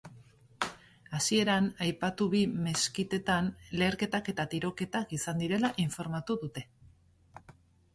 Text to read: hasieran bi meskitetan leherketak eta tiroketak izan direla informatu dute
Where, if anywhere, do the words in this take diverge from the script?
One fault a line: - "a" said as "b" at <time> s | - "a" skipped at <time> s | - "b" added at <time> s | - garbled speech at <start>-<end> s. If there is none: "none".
- "aipatu" added at 1.9 s